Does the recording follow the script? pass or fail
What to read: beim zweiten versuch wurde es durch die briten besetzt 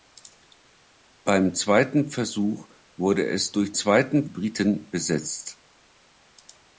fail